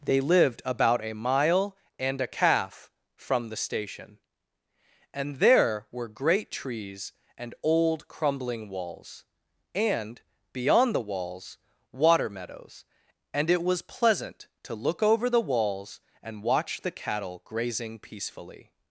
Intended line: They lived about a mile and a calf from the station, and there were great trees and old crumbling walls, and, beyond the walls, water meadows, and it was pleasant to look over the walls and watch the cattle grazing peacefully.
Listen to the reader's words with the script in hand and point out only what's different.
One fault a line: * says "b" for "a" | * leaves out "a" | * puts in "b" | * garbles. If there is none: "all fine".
all fine